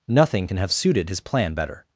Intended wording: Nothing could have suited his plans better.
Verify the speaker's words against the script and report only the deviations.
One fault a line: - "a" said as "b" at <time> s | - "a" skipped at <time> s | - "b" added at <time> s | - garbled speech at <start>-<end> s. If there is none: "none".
- "could" said as "can" at 0.4 s
- "plans" said as "plan" at 1.2 s